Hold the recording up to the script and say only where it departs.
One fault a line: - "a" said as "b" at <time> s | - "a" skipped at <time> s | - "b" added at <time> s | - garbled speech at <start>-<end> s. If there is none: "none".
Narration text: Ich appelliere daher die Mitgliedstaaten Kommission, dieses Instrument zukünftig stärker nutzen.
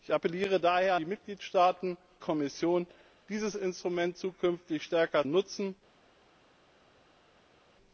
none